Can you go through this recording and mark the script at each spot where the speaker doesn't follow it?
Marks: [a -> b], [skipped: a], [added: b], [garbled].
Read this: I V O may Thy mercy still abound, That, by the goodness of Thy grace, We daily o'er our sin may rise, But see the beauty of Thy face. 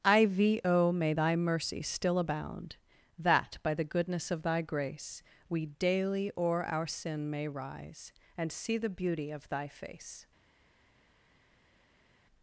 I V O may Thy mercy still abound, That, by the goodness of Thy grace, We daily o'er our sin may rise, [But -> And] see the beauty of Thy face.